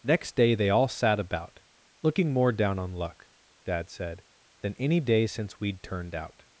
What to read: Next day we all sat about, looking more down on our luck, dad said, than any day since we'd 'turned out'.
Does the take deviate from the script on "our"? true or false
true